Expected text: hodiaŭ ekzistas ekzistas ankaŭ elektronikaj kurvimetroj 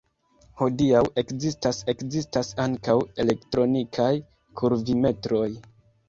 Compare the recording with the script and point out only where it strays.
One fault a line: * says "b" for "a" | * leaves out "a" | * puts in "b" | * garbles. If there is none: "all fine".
all fine